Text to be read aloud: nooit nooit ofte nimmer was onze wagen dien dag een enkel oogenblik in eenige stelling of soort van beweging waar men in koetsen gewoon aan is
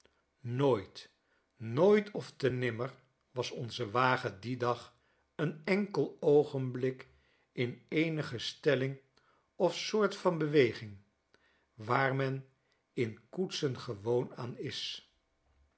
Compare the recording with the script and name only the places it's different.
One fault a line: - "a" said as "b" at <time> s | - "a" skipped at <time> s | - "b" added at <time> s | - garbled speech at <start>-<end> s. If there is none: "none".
none